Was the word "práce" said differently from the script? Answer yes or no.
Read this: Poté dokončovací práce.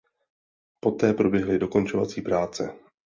no